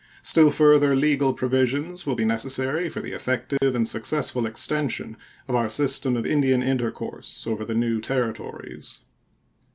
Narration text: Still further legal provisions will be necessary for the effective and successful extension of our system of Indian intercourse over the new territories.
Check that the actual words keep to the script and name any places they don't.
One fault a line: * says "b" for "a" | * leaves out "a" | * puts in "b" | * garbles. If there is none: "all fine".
all fine